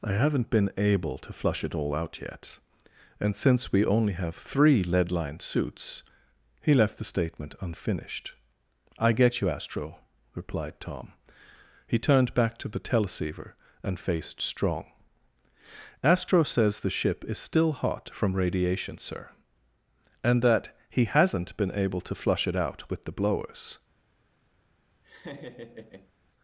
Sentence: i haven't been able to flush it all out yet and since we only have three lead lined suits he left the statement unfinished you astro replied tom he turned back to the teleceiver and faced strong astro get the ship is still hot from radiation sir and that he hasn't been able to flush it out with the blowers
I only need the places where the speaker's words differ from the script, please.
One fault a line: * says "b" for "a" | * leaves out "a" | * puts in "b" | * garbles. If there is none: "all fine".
* puts in "i get"
* says "says" for "get"